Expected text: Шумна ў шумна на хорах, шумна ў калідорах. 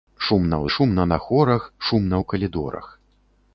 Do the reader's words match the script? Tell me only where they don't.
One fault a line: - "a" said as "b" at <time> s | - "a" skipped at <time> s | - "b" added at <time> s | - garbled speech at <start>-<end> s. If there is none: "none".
none